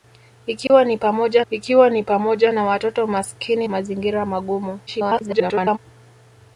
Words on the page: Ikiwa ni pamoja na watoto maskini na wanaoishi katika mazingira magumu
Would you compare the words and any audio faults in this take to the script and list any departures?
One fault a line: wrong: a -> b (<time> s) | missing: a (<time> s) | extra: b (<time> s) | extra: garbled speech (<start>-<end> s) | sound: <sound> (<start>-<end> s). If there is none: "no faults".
sound: dropout (0.7-0.7 s)
wrong: na watoto maskini -> ikiwa ni pamoja (1.5 s)
wrong: wanaoishi katika -> watoto maskini (2.6 s)
extra: garbled speech (4.9-5.8 s)